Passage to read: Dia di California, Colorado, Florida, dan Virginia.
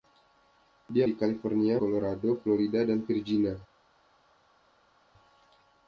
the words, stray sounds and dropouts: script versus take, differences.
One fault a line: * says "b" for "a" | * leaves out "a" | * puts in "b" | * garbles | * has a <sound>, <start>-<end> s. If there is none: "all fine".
all fine